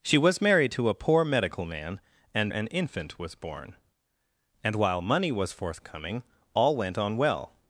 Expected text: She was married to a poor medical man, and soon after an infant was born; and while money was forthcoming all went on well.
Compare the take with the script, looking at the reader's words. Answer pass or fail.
fail